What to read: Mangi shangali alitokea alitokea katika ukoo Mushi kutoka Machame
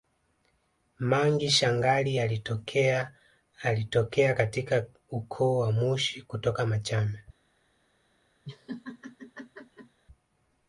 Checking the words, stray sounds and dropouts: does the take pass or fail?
fail